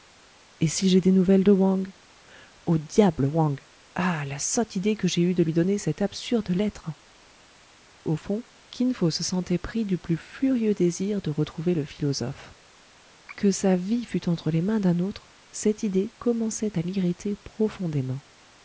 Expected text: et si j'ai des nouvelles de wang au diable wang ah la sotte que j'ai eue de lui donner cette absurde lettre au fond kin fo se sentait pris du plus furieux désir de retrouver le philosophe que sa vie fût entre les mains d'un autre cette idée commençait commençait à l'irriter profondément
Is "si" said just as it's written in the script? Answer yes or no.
yes